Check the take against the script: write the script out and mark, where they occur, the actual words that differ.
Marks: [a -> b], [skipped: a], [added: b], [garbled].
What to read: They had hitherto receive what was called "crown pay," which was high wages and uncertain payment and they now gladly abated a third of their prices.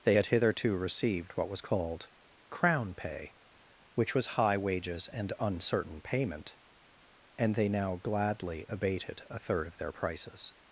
They had hitherto [receive -> received] what was called "crown pay," which was high wages and uncertain payment and they now gladly abated a third of their prices.